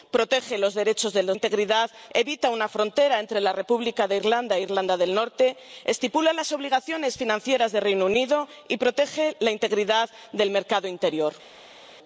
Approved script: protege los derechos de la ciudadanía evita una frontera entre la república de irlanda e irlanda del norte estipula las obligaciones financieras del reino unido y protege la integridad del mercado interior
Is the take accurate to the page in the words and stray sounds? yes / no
no